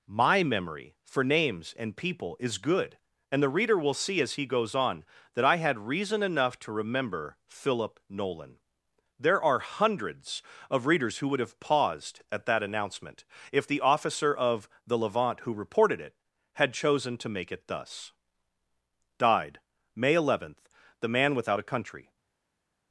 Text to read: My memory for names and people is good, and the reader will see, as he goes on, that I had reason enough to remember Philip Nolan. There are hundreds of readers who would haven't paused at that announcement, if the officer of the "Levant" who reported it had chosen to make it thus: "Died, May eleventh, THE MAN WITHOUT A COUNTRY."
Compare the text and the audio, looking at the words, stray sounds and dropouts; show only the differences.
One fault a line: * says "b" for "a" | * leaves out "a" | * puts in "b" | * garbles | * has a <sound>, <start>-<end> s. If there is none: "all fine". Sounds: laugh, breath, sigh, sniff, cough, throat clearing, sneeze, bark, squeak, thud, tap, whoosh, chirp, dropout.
* says "have" for "haven't"